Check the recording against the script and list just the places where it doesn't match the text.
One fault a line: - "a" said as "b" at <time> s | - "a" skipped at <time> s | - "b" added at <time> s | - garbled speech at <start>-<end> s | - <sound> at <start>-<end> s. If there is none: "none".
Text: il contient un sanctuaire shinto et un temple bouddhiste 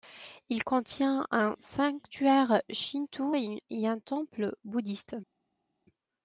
none